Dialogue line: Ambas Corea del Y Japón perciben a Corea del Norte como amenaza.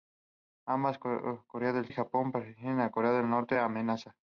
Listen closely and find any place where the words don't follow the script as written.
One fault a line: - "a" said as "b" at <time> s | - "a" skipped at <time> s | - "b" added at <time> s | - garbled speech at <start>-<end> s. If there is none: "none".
none